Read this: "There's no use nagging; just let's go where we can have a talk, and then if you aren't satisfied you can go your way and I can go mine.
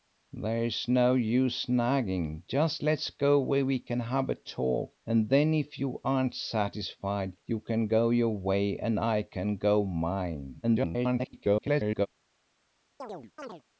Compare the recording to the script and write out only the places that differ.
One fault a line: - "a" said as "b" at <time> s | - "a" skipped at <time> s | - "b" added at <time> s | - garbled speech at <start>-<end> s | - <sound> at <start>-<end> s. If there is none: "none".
- garbled speech at 10.6-12.1 s
- chirp at 13.0-13.6 s